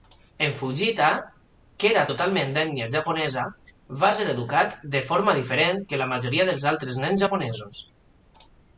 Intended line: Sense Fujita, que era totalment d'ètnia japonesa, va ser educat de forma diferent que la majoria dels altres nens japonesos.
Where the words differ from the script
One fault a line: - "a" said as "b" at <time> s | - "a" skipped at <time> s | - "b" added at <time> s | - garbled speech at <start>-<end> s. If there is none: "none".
- "Sense" said as "En" at 0.4 s